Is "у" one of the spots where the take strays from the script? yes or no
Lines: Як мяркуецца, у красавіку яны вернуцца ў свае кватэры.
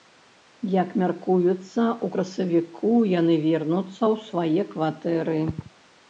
no